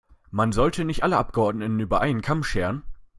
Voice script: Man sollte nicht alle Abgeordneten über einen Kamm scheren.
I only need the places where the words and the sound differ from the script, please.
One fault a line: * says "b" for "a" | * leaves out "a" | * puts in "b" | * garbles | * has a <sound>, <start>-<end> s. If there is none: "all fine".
all fine